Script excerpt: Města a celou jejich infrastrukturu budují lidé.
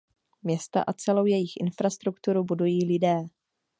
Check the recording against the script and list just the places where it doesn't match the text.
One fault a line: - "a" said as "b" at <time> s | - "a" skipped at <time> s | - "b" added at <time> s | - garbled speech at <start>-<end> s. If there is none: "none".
none